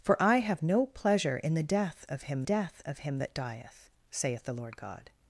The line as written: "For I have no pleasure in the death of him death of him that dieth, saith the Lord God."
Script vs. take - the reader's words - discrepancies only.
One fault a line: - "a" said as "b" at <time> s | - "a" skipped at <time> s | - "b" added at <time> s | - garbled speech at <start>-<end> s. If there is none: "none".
none